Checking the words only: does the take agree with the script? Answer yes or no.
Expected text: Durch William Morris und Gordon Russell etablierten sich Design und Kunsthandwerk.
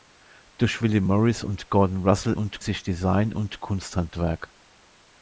no